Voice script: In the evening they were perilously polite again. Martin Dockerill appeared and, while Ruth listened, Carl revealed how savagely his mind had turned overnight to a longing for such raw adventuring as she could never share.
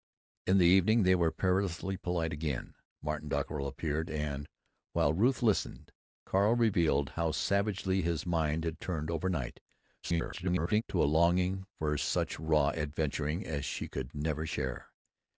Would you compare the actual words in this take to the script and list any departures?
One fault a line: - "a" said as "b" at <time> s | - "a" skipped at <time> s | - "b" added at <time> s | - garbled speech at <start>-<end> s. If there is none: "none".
- garbled speech at 10.0-10.8 s